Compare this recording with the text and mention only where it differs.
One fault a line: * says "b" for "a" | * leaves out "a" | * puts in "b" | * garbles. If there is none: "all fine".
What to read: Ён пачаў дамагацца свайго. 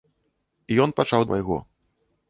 * leaves out "дамагацца"